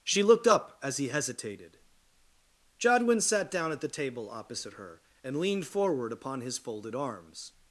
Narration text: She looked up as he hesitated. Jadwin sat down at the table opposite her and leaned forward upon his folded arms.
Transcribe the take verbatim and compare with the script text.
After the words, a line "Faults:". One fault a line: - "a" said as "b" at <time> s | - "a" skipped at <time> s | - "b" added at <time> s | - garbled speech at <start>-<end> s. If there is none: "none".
She looked up as he hesitated. Jadwin sat down at the table opposite her and leaned forward upon his folded arms.
Faults:
none